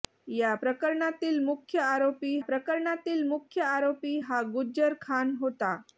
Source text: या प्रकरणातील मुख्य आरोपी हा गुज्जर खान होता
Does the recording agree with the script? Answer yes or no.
no